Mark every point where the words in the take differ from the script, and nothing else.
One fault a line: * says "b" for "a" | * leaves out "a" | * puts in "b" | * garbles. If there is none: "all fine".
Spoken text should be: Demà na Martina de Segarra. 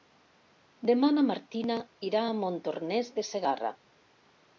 * puts in "irà a Montornès"